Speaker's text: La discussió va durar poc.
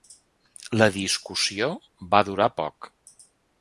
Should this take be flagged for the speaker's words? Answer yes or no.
no